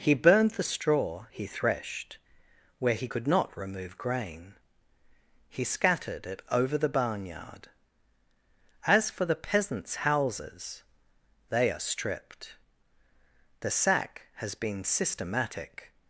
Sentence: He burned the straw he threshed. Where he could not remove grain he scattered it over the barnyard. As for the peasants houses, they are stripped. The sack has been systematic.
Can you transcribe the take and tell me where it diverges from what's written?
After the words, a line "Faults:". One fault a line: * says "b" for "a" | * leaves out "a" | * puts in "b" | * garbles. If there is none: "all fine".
He burned the straw he threshed. Where he could not remove grain he scattered it over the barnyard. As for the peasants houses, they are stripped. The sack has been systematic.
Faults:
all fine